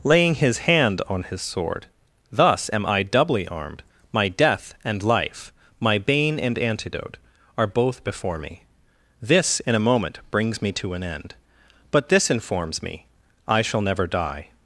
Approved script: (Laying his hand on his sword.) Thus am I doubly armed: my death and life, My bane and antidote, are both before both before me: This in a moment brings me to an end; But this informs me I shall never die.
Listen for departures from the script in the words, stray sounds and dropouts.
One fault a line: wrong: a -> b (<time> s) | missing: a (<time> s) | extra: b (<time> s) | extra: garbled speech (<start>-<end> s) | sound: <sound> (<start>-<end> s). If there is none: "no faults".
missing: both before (8.4 s)